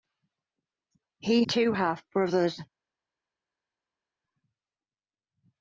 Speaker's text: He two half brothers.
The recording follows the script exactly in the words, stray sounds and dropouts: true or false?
true